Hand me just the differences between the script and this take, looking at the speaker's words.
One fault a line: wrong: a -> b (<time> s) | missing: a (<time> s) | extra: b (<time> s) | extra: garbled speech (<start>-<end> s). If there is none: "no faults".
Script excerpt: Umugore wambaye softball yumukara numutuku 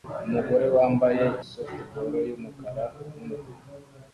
no faults